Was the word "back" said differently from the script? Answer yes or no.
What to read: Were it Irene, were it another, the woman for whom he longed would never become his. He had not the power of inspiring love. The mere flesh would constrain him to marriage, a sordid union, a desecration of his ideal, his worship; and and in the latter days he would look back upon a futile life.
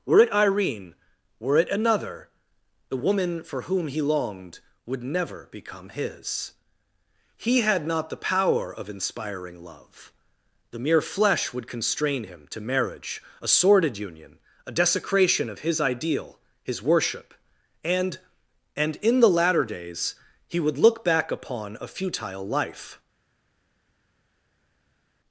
no